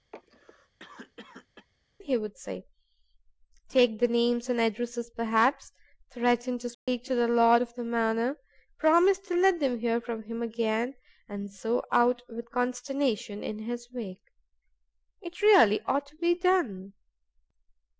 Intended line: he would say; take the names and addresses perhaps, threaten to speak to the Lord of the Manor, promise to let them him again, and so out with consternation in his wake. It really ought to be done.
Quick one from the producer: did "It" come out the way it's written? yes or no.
yes